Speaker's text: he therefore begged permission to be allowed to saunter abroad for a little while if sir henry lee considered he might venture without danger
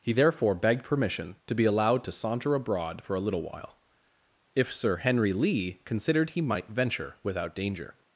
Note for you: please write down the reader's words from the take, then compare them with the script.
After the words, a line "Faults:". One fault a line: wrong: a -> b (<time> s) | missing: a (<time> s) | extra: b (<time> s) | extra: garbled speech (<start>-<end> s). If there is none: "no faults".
he therefore begged permission to be allowed to saunter abroad for a little while if sir henry lee considered he might venture without danger
Faults:
no faults